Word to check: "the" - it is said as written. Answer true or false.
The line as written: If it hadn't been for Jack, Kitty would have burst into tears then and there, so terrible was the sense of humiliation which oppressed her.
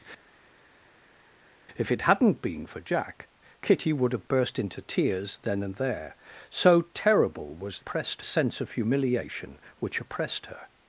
false